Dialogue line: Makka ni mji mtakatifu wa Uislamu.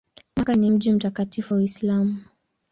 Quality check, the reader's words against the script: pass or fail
pass